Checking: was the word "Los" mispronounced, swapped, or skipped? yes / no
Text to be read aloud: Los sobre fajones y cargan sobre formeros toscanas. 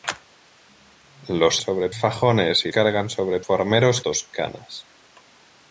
no